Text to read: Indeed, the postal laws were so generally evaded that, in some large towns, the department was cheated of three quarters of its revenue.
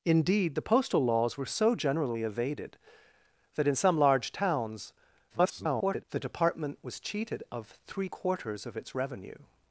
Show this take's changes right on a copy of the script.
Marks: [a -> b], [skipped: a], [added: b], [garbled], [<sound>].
Indeed, the postal laws were so generally evaded that, in some large towns, [garbled] the department was cheated of three quarters of its revenue.